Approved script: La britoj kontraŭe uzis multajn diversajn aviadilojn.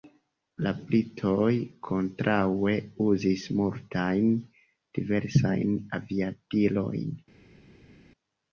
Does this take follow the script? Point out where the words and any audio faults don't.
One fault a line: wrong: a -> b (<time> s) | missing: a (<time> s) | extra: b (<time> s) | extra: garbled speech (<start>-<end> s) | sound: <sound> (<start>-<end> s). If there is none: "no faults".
no faults